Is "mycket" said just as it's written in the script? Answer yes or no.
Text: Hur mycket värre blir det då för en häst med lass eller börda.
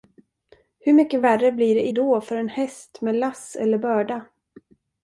yes